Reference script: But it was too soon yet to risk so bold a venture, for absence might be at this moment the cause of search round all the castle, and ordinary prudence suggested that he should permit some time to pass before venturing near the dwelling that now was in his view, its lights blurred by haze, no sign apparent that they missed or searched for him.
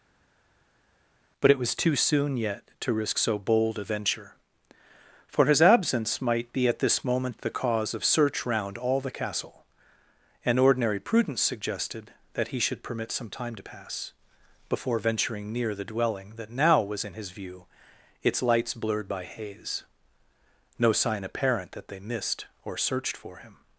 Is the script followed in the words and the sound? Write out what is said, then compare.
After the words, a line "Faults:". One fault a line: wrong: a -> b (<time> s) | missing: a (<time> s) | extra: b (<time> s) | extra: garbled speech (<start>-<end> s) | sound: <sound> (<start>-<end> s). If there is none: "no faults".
But it was too soon yet to risk so bold a venture, for his absence might be at this moment the cause of search round all the castle, and ordinary prudence suggested that he should permit some time to pass before venturing near the dwelling that now was in his view, its lights blurred by haze, no sign apparent that they missed or searched for him.
Faults:
extra: his (5.4 s)